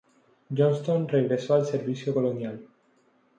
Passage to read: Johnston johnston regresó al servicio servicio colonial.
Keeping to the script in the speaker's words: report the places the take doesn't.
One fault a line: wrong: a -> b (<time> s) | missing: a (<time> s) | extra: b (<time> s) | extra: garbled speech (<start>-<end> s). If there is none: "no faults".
missing: johnston (1.1 s)
missing: servicio (2.2 s)